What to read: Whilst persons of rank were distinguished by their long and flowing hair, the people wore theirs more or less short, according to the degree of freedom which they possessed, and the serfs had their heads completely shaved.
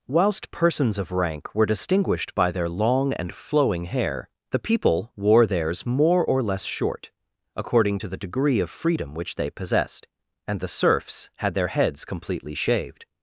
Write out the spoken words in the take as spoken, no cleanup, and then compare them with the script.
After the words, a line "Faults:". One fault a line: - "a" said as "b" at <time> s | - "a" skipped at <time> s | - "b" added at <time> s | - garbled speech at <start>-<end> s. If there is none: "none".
Whilst persons of rank were distinguished by their long and flowing hair, the people wore theirs more or less short, according to the degree of freedom which they possessed, and the serfs had their heads completely shaved.
Faults:
none